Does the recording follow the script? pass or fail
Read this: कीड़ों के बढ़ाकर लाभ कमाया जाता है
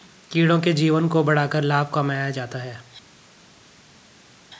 fail